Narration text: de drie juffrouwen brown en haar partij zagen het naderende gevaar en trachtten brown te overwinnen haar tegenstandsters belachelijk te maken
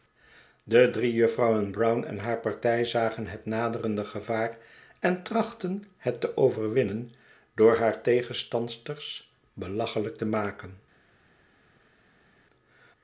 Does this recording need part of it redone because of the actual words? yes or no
yes